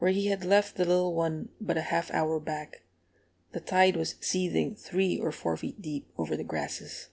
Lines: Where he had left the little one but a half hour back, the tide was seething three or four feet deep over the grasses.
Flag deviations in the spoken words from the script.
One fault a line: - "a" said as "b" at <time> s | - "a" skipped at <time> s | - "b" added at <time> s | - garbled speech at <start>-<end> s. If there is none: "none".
none